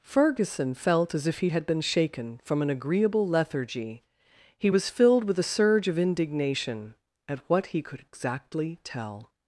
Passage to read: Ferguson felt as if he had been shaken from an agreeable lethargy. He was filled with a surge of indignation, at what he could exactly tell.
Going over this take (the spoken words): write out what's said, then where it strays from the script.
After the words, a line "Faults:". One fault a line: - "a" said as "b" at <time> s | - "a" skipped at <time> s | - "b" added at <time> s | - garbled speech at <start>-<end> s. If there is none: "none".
Ferguson felt as if he had been shaken from an agreeable lethargy. He was filled with a surge of indignation, at what he could exactly tell.
Faults:
none